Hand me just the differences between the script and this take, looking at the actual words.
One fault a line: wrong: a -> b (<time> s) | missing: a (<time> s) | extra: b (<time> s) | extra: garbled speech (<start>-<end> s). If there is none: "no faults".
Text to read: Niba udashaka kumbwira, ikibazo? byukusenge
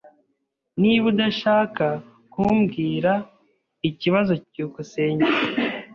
no faults